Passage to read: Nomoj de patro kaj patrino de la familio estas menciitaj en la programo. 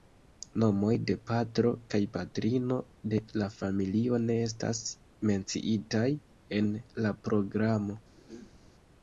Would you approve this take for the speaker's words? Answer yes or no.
no